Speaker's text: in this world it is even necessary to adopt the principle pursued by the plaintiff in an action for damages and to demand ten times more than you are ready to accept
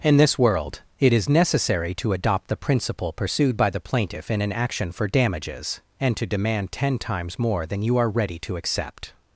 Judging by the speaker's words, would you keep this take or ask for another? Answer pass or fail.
fail